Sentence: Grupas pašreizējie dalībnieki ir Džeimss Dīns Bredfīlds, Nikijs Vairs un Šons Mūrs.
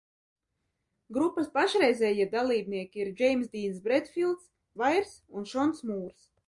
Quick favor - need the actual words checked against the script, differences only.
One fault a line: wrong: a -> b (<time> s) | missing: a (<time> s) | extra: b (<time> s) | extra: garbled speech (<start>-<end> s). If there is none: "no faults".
missing: Nikijs (4.5 s)